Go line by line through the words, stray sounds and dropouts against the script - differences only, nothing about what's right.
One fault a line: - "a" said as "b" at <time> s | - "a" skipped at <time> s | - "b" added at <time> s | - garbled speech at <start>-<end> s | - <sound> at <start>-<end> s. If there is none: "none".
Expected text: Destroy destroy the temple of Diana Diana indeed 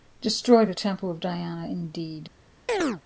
- "destroy" skipped at 0.7 s
- "Diana" skipped at 1.7 s
- chirp at 2.7-3.0 s